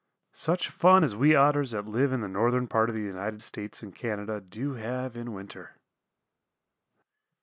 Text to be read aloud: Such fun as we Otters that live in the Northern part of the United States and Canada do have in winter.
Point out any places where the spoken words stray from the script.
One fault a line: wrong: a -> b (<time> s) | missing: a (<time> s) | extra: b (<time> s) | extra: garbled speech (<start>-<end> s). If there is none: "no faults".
no faults